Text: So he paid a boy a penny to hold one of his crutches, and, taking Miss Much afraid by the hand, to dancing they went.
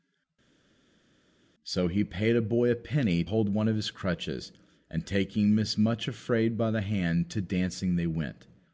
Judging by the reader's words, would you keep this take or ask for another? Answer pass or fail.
fail